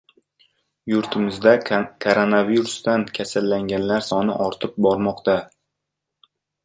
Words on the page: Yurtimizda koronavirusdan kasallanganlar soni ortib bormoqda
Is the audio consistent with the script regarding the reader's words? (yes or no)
yes